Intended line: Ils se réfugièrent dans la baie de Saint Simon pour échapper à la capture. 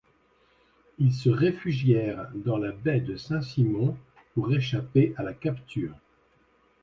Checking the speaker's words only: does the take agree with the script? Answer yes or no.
yes